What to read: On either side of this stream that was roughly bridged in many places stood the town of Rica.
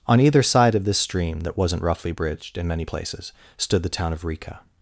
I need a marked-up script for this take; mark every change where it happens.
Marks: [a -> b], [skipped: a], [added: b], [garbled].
On either side of this stream that [was -> wasn't] roughly bridged in many places stood the town of Rica.